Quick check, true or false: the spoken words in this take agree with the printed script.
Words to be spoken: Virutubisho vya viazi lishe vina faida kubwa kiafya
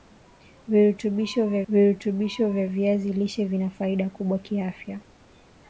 false